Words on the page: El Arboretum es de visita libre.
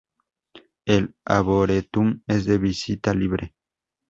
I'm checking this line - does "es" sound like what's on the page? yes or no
yes